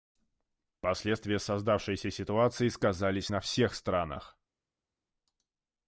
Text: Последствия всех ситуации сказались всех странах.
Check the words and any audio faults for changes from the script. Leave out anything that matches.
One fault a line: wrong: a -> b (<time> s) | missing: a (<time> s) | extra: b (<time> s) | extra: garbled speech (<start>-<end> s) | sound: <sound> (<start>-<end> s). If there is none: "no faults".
wrong: всех -> создавшейся (1.4 s)
extra: на (3.3 s)